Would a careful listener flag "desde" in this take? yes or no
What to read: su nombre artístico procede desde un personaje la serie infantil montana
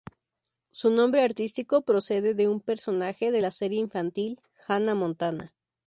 yes